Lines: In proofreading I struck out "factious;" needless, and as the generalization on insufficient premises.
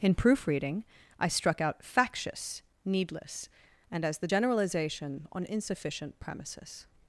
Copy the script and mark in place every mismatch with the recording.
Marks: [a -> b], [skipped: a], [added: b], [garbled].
In proofreading I struck out "factious;" needless, and as the generalization on insufficient premises.